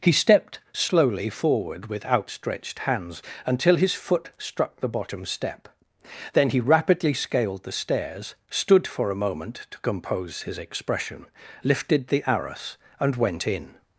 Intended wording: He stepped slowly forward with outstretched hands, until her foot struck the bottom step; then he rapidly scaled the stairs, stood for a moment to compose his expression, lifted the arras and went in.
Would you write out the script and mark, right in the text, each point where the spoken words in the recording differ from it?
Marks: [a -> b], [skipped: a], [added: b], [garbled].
He stepped slowly forward with outstretched hands, until [her -> his] foot struck the bottom step; then he rapidly scaled the stairs, stood for a moment to compose his expression, lifted the arras and went in.